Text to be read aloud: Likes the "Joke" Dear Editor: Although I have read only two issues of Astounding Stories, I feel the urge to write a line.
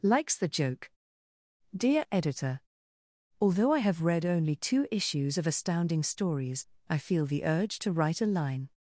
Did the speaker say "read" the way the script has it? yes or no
yes